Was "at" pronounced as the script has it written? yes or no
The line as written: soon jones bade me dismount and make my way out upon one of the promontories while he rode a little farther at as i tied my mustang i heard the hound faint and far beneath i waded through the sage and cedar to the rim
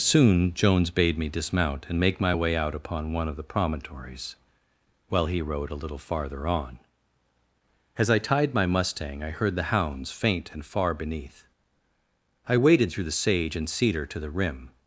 no